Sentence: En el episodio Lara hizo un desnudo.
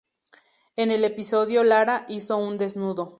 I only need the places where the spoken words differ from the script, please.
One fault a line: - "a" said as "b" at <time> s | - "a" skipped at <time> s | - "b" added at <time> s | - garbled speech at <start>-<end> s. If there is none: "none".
none